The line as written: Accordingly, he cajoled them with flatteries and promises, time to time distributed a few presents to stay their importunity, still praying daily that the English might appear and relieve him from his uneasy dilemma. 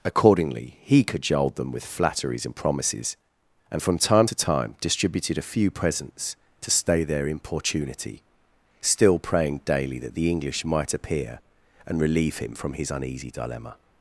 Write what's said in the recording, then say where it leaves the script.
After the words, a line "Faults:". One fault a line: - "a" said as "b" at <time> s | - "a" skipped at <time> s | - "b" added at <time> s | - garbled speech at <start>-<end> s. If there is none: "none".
Accordingly, he cajoled them with flatteries and promises, and from time to time distributed a few presents to stay their importunity, still praying daily that the English might appear and relieve him from his uneasy dilemma.
Faults:
- "and from" added at 3.7 s